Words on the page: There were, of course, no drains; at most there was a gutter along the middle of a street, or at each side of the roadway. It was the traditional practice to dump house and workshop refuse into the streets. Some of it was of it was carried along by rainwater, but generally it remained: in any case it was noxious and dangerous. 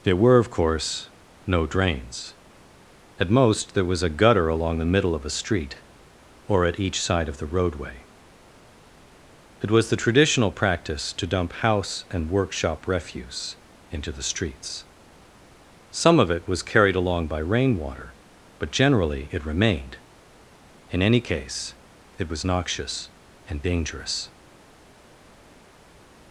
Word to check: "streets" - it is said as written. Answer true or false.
true